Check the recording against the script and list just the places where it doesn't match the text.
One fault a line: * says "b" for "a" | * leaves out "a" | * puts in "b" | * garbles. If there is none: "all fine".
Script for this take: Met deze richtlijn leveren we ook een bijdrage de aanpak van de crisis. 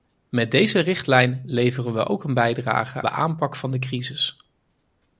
all fine